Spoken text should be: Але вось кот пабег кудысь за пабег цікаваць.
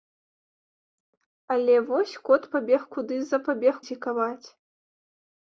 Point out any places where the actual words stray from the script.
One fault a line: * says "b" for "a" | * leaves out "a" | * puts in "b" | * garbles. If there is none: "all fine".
all fine